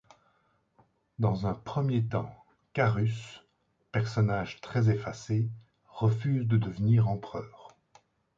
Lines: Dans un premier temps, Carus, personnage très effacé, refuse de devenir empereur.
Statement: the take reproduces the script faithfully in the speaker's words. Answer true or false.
true